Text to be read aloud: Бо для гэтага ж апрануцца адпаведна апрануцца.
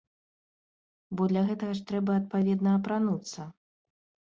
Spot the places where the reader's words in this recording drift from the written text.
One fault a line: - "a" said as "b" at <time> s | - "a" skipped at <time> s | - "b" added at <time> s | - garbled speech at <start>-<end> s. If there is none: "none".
- "апрануцца" said as "трэба" at 1.9 s